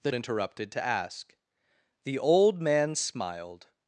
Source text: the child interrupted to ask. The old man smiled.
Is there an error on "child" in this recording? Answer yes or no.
yes